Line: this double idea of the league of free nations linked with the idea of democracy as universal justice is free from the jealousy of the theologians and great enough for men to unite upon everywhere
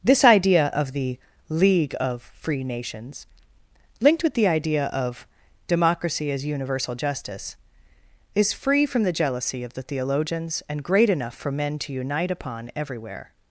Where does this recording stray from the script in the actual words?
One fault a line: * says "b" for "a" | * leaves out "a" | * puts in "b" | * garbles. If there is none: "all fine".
* leaves out "double"